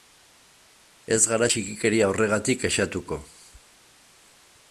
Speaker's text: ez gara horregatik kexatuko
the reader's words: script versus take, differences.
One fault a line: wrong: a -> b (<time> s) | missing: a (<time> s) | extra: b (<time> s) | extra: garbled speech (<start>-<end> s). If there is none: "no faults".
extra: txikikeria (1.5 s)